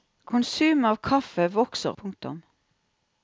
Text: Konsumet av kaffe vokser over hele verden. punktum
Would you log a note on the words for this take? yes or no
yes